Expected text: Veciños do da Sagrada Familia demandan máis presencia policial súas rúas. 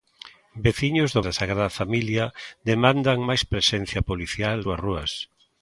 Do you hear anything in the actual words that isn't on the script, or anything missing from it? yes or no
no